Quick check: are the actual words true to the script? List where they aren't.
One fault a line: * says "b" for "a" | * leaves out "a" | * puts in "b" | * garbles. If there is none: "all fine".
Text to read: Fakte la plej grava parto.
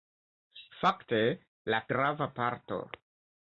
* leaves out "plej"